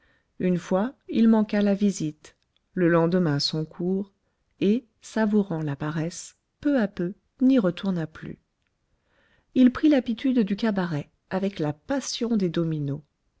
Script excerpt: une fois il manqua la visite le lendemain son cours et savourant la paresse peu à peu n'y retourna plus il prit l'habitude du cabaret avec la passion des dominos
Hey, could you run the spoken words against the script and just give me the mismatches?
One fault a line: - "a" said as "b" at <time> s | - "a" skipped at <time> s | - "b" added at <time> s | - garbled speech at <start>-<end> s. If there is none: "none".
none